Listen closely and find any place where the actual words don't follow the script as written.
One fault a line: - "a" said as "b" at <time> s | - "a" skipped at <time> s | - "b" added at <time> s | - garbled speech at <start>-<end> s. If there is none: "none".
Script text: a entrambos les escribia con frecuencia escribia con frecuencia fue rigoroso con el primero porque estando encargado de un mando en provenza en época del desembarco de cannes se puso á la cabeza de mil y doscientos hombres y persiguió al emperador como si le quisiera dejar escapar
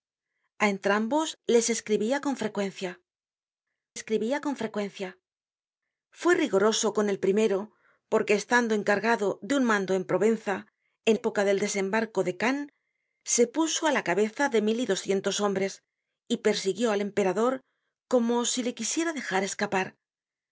none